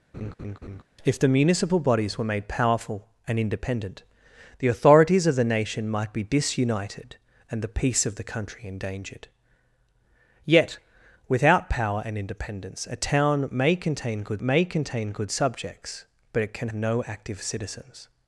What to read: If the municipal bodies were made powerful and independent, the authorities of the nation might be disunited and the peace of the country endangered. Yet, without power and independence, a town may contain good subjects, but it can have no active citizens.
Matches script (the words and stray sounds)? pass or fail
fail